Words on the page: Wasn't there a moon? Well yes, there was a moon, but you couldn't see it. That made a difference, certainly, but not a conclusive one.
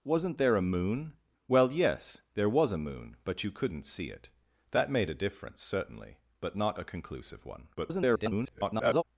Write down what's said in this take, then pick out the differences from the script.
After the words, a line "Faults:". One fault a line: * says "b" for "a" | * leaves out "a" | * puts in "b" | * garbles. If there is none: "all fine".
Wasn't there a moon? Well yes, there was a moon, but you couldn't see it. That made a difference, certainly, but not a conclusive one. [garbled]
Faults:
* garbles